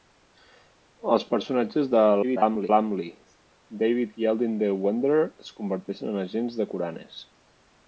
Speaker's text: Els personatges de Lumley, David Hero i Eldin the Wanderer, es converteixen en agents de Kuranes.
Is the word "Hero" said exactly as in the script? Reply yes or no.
no